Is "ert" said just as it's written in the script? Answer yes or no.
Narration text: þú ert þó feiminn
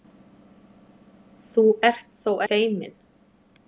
yes